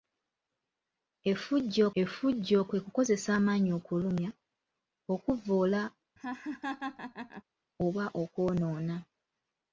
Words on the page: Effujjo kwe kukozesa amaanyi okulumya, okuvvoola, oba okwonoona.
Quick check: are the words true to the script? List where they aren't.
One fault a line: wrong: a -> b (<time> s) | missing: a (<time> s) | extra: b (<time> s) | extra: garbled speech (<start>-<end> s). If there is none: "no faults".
extra: effujjo (2.0 s)